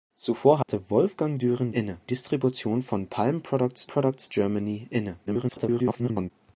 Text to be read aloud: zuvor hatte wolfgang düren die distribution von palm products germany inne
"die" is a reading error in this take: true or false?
true